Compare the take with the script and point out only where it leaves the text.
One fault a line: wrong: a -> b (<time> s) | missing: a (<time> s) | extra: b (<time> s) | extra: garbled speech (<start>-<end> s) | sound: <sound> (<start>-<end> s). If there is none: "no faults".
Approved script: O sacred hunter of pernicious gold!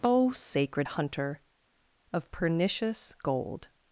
no faults